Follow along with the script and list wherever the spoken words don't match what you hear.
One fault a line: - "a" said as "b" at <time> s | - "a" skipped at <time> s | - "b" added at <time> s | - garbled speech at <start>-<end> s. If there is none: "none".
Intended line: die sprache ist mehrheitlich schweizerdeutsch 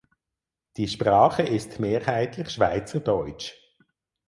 none